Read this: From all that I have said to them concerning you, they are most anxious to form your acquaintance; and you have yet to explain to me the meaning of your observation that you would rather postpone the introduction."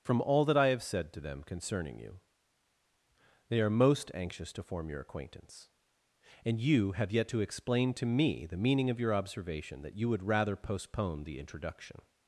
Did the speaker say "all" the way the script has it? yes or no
yes